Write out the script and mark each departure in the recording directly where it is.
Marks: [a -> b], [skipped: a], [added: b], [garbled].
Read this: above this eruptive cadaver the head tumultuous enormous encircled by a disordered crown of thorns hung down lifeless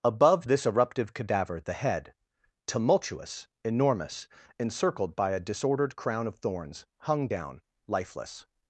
above this eruptive cadaver the head tumultuous enormous encircled by a disordered crown of thorns hung down lifeless